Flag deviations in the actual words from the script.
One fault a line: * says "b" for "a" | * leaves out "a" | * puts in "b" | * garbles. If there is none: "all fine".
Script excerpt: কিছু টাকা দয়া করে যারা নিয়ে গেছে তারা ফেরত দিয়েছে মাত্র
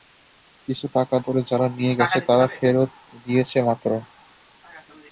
* leaves out "দয়া"